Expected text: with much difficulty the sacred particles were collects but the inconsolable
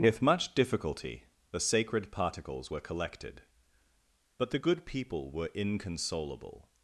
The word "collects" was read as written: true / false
false